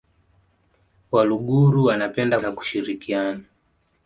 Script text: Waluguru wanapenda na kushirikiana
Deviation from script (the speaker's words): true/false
false